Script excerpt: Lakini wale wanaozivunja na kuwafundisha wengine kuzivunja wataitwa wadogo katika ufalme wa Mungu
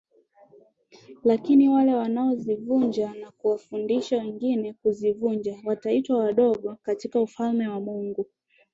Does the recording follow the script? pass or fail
pass